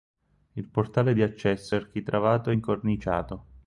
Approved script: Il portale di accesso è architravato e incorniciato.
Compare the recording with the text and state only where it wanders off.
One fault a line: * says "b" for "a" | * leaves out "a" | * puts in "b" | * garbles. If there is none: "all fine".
all fine